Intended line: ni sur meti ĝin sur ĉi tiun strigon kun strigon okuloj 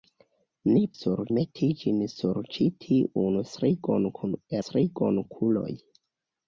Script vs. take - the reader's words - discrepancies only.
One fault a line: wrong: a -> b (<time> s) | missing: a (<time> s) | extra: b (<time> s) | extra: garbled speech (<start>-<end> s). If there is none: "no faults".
no faults